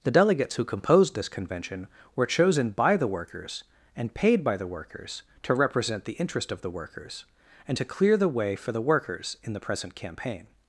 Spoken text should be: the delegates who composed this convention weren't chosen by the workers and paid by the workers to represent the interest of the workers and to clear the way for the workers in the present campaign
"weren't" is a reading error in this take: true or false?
true